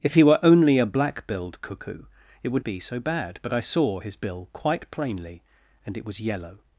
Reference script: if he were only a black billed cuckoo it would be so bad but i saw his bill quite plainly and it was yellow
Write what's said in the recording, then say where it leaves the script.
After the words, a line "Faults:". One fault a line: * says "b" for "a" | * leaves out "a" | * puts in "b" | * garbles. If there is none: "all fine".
if he were only a black billed cuckoo it would be so bad but i saw his bill quite plainly and it was yellow
Faults:
all fine